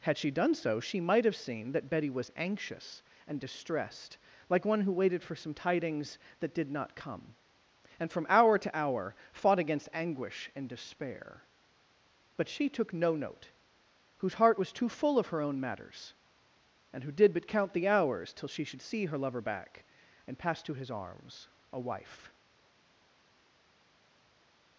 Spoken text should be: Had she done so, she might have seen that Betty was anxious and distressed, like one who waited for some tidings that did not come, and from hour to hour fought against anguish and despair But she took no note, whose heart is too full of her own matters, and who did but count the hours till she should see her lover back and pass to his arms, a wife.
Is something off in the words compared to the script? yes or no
yes